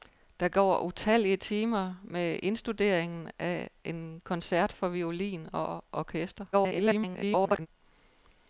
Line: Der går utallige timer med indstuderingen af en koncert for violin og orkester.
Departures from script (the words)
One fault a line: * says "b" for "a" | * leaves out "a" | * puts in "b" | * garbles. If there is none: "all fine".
* garbles